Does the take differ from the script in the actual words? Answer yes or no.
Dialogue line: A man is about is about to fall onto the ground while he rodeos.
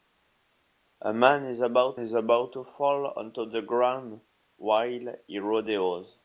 no